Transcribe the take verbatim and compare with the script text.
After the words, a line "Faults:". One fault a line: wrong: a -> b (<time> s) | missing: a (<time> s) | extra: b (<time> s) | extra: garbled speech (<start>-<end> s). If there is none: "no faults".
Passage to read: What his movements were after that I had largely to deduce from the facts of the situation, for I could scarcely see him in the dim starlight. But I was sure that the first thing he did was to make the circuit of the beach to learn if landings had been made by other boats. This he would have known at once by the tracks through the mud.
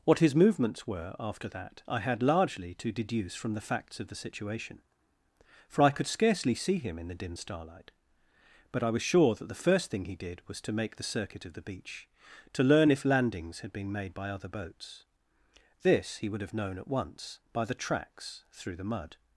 What his movements were after that I had largely to deduce from the facts of the situation, for I could scarcely see him in the dim starlight. But I was sure that the first thing he did was to make the circuit of the beach to learn if landings had been made by other boats. This he would have known at once by the tracks through the mud.
Faults:
no faults